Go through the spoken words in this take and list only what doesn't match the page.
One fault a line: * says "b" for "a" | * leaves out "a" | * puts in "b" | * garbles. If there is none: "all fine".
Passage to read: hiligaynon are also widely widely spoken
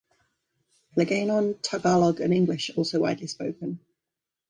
* puts in "tagalog and english"
* leaves out "widely"